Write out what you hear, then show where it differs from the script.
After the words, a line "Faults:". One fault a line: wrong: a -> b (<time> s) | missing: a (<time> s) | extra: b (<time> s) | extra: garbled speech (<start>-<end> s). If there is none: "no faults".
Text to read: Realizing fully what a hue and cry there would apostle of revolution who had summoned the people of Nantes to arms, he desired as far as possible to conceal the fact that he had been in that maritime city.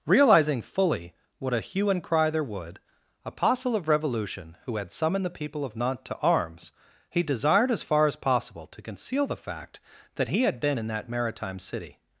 Realizing fully what a hue and cry there would apostle of revolution who had summoned the people of Nantes to arms, he desired as far as possible to conceal the fact that he had been in that maritime city.
Faults:
no faults